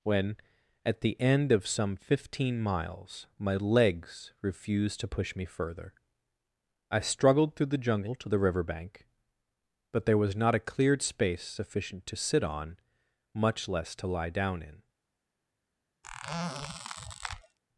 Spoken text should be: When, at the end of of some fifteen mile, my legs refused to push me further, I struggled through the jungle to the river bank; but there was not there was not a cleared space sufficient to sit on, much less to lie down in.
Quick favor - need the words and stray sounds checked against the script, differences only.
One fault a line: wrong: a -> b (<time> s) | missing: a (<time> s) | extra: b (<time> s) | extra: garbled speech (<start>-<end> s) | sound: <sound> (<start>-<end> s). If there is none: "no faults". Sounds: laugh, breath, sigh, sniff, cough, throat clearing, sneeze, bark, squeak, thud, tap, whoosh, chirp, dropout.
missing: of (1.7 s)
wrong: mile -> miles (2.6 s)
missing: there was not (10.5 s)
sound: squeak (16.0-17.6 s)